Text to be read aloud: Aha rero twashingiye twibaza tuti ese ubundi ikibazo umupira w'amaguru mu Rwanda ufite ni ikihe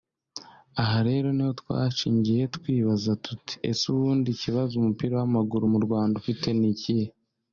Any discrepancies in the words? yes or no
yes